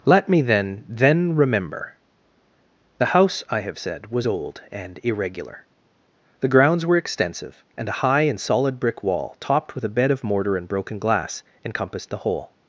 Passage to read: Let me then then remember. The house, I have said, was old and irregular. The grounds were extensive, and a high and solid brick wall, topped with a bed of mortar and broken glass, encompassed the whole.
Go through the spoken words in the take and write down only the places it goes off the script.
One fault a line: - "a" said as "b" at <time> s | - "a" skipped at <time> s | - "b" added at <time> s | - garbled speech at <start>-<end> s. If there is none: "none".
none